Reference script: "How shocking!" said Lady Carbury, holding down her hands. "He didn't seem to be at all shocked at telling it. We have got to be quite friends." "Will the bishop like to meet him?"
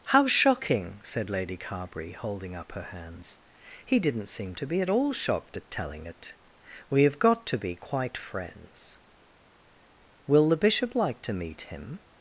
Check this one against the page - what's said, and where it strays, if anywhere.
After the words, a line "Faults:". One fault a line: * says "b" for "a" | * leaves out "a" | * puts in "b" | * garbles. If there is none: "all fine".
"How shocking!" said Lady Carbury, holding up her hands. "He didn't seem to be at all shocked at telling it. We have got to be quite friends." "Will the bishop like to meet him?"
Faults:
* says "up" for "down"